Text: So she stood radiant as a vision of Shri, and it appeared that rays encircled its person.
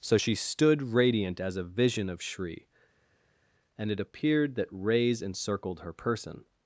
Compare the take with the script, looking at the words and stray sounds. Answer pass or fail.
fail